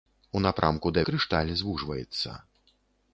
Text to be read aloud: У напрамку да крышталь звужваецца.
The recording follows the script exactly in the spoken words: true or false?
true